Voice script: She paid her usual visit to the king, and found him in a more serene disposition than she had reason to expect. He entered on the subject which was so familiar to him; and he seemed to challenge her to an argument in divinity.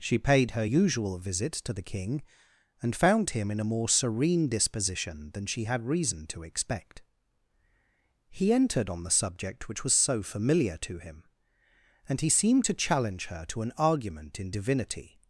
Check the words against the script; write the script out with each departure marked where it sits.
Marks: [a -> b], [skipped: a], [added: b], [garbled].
She paid her usual visit to the king, and found him in a more serene disposition than she had reason to expect. He entered on the subject which was so familiar to him; and he seemed to challenge her to an argument in divinity.